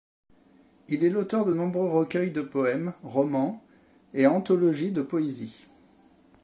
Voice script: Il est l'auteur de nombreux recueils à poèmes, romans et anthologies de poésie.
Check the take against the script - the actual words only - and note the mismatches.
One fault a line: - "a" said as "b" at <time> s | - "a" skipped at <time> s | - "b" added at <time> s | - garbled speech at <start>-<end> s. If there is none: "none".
- "à" said as "de" at 2.3 s